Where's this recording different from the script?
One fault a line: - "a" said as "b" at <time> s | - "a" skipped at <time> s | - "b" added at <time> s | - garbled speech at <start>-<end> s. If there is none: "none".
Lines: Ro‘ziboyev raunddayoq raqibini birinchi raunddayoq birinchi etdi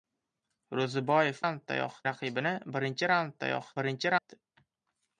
none